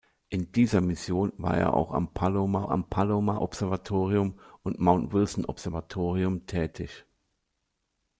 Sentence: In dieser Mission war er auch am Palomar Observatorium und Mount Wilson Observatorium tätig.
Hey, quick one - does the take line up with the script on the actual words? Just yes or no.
no